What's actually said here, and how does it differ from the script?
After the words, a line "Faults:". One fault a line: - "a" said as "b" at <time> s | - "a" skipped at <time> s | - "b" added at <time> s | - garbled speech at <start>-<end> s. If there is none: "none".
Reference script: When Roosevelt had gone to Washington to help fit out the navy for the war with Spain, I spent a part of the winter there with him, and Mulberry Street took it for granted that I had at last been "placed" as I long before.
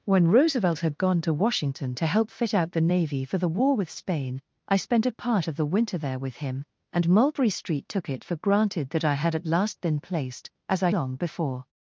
When Roosevelt had gone to Washington to help fit out the navy for the war with Spain, I spent a part of the winter there with him, and Mulberry Street took it for granted that I had at last been "placed" as I long before.
Faults:
none